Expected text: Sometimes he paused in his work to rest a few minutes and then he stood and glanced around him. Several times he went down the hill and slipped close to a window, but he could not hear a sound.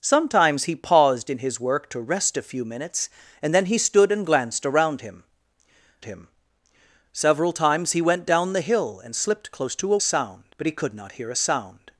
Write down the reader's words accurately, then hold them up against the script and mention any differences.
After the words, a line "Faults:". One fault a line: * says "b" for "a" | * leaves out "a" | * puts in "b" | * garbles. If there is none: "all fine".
Sometimes he paused in his work to rest a few minutes and then he stood and glanced around him him. Several times he went down the hill and slipped close to a sound, but he could not hear a sound.
Faults:
* puts in "him"
* says "sound" for "window"